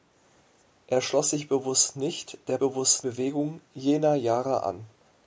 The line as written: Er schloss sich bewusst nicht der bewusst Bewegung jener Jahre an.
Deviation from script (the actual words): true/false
false